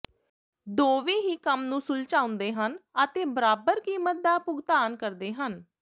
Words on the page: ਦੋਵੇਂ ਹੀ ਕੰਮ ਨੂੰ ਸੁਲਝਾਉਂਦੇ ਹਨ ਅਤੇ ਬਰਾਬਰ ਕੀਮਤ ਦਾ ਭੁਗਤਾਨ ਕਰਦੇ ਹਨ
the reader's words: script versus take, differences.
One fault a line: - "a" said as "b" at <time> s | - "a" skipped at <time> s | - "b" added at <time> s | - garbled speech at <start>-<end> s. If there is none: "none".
none